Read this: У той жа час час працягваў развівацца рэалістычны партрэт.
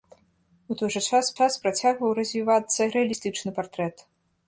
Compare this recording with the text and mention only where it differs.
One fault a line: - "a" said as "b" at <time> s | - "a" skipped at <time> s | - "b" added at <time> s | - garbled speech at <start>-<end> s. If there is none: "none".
none